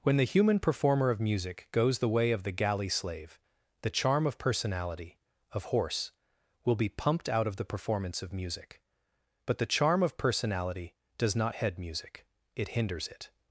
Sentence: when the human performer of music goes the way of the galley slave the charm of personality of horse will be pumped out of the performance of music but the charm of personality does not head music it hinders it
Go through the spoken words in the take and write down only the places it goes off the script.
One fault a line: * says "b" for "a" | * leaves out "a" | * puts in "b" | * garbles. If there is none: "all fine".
all fine